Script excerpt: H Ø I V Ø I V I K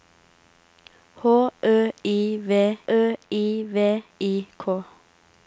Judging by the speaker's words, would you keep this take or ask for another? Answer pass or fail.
pass